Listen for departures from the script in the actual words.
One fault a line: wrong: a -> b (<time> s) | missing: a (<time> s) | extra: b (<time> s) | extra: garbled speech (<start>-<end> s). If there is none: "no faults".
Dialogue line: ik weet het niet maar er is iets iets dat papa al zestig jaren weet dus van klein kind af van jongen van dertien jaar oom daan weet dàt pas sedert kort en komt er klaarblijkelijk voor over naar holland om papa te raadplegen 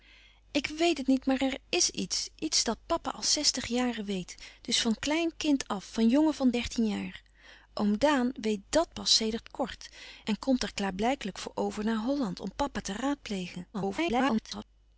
extra: garbled speech (13.7-14.6 s)